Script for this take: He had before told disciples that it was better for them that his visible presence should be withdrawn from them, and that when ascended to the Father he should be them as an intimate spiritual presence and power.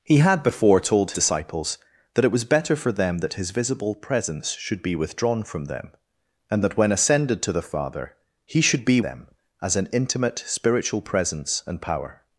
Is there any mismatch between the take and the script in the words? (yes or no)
no